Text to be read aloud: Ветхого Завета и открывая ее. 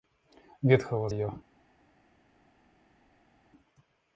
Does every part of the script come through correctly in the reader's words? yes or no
no